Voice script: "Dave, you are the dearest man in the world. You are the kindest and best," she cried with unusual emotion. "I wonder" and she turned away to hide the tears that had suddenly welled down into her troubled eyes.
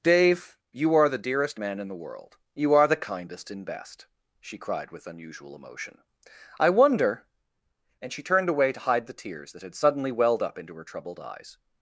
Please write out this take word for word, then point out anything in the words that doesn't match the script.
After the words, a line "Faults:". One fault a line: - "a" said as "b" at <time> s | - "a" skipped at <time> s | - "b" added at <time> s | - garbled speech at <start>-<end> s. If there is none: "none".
"Dave, you are the dearest man in the world. You are the kindest and best," she cried with unusual emotion. "I wonder" and she turned away to hide the tears that had suddenly welled up into her troubled eyes.
Faults:
- "down" said as "up" at 10.4 s